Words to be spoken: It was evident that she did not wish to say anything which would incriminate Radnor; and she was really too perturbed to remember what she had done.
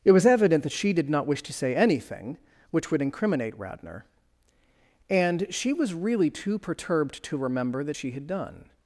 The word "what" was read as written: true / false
false